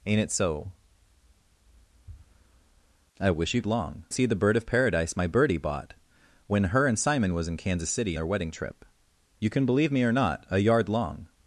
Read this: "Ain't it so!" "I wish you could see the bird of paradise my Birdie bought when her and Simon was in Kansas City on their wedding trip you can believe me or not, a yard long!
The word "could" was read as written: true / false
false